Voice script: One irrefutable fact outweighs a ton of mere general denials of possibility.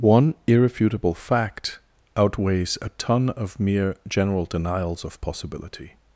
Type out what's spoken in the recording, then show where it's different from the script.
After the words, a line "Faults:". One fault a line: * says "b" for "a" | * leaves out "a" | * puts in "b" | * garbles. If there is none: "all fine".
One irrefutable fact outweighs a ton of mere general denials of possibility.
Faults:
all fine